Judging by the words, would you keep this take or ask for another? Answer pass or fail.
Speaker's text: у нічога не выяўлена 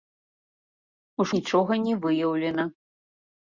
pass